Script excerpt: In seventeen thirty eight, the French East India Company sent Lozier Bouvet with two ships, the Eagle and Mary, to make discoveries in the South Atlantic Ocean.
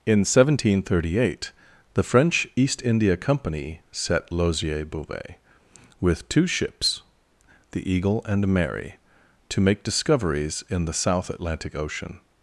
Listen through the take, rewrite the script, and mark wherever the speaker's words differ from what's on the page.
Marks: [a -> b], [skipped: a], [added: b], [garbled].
In seventeen thirty eight, the French East India Company [sent -> set] Lozier Bouvet with two ships, the Eagle and Mary, to make discoveries in the South Atlantic Ocean.